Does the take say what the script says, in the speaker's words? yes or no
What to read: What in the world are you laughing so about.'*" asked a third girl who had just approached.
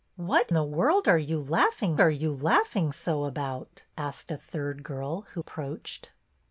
no